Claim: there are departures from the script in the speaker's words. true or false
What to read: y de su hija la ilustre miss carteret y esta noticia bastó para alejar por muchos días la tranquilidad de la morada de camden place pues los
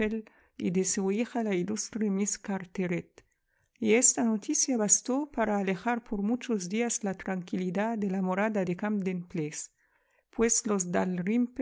false